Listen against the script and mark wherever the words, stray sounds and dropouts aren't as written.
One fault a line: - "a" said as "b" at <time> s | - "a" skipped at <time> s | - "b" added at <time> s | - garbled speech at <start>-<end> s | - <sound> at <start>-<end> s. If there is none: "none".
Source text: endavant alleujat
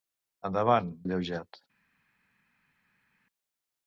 none